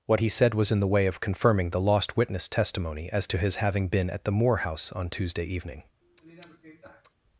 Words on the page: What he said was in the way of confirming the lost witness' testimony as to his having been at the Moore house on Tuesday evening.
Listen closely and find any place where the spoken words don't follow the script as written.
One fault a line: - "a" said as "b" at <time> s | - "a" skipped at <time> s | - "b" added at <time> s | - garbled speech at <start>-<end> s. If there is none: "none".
none